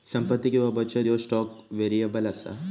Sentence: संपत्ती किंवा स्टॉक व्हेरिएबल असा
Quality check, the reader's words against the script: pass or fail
fail